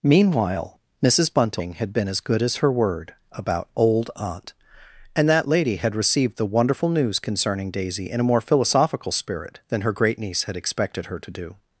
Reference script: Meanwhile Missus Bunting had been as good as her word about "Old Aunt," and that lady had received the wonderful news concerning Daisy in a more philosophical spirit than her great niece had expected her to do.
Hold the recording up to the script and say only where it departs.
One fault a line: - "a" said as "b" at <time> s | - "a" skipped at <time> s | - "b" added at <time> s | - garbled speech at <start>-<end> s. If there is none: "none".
none